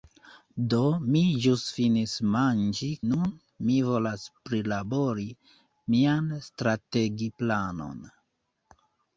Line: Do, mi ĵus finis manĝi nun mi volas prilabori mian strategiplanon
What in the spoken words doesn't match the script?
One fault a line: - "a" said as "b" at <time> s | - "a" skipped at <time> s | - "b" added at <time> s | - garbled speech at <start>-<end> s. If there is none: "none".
none